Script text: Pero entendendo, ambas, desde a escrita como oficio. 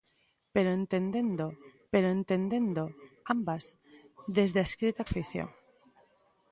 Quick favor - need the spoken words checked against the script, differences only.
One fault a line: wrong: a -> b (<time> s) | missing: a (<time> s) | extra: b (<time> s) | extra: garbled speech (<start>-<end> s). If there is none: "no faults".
extra: pero entendendo (1.9 s)
missing: como (5.0 s)